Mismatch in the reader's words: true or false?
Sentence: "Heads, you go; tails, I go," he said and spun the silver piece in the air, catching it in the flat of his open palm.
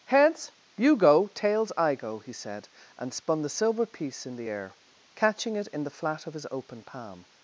false